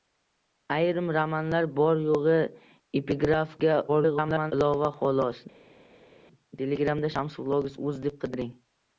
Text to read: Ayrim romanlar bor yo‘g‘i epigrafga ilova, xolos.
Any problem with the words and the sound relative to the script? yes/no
yes